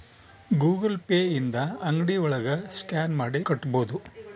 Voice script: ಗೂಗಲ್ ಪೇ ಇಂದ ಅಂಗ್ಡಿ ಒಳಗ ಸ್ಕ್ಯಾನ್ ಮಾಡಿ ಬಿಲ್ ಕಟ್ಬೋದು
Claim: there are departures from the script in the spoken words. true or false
true